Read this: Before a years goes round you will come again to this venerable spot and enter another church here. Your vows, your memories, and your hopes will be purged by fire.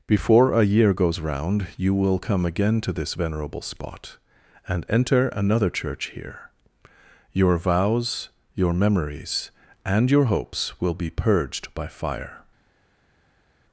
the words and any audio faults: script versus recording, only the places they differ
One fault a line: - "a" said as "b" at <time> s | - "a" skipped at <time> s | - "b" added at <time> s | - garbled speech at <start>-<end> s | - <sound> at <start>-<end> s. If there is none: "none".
- "years" said as "year" at 0.7 s